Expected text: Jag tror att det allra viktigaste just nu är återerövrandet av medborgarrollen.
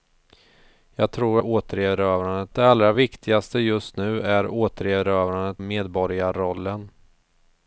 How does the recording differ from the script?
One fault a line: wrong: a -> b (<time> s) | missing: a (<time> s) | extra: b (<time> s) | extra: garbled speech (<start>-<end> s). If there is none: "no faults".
wrong: att -> återerövrandet (1.4 s)
missing: av (5.6 s)